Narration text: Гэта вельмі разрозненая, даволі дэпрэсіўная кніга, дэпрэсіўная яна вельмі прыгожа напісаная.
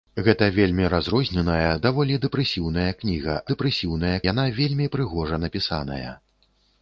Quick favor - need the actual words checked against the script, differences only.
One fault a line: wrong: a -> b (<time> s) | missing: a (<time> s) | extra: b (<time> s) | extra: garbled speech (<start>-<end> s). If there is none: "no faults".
no faults